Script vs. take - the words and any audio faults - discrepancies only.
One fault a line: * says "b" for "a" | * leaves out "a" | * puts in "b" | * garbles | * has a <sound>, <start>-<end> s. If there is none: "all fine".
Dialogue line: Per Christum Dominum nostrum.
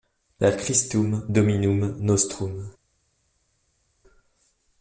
all fine